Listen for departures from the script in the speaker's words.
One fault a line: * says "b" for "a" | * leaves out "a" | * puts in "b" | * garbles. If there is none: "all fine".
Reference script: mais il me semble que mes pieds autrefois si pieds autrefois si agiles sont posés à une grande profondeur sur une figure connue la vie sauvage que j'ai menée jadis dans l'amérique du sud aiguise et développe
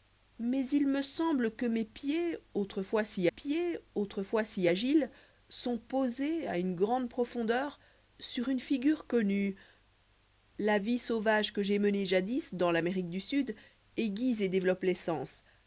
all fine